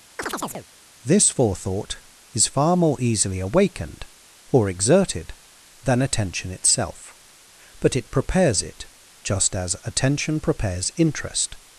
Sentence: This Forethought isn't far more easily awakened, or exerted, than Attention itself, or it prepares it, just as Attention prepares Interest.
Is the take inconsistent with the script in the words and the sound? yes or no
yes